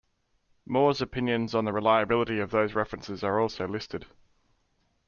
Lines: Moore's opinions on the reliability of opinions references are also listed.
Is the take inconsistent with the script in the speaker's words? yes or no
yes